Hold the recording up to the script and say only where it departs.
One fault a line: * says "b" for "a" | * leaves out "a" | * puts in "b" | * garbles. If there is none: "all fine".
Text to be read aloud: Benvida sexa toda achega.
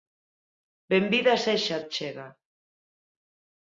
* leaves out "toda"